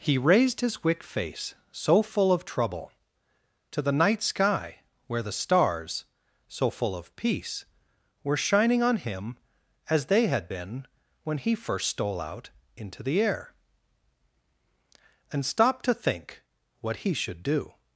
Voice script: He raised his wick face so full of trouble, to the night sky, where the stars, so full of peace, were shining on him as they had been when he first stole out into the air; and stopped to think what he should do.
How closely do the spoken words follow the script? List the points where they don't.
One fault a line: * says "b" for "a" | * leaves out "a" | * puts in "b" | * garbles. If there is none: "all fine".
all fine